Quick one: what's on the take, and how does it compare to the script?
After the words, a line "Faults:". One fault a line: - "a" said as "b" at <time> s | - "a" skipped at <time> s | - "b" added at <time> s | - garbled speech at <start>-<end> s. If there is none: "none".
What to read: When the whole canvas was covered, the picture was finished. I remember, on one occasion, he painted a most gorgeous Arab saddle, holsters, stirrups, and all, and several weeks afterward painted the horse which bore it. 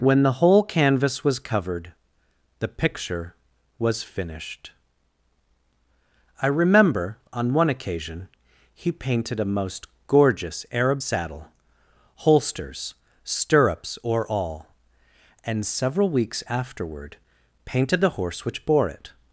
When the whole canvas was covered, the picture was finished. I remember, on one occasion, he painted a most gorgeous Arab saddle, holsters, stirrups, or all, and several weeks afterward painted the horse which bore it.
Faults:
- "and" said as "or" at 14.0 s